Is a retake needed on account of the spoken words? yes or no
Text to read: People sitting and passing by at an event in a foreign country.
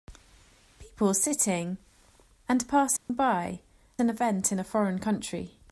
yes